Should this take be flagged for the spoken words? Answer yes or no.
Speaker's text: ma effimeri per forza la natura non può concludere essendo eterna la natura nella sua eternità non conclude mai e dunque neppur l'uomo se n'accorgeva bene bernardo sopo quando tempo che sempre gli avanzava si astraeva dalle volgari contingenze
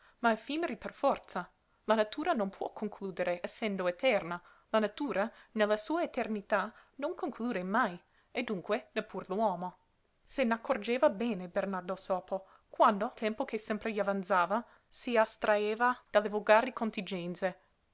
no